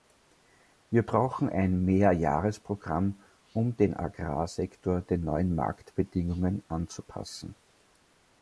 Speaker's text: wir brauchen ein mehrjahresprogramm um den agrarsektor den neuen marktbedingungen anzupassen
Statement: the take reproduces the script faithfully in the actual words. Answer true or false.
true